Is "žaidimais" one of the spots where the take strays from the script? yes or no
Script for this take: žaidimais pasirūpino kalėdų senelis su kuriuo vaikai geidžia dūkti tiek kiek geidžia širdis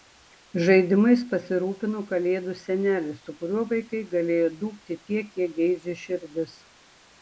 no